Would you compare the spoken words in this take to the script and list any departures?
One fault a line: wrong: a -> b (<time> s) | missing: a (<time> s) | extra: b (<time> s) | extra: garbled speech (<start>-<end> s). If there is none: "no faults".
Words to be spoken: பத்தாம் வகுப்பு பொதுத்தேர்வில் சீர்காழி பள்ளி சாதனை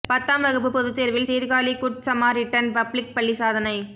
extra: குட் சமாரிட்டன் பப்ளிக் (1.8 s)